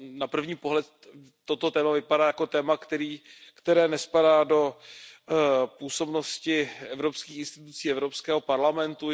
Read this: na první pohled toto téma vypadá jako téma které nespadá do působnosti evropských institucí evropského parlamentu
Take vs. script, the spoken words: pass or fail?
pass